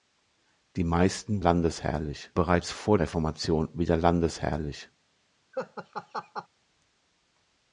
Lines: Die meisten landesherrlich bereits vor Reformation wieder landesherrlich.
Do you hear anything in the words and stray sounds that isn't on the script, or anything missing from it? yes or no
yes